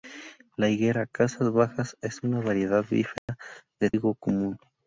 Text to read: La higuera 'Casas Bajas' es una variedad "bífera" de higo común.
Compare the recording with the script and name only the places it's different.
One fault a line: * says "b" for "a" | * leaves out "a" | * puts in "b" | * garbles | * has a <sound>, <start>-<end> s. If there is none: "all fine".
* has a dropout, 3.2-3.3 s